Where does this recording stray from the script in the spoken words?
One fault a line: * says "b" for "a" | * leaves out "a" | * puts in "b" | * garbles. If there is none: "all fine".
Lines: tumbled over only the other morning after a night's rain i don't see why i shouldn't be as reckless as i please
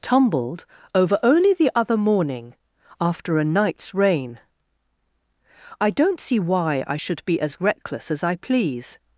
* says "should" for "shouldn't"